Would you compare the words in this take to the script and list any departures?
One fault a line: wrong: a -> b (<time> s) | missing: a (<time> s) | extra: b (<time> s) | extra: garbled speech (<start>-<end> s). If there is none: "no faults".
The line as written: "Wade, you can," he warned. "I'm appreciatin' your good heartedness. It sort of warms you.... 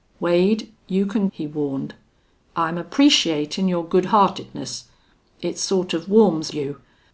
no faults